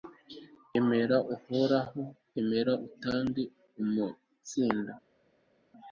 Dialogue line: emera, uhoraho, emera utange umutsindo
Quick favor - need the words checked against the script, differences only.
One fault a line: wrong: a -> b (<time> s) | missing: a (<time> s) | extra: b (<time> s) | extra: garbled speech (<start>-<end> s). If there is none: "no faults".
no faults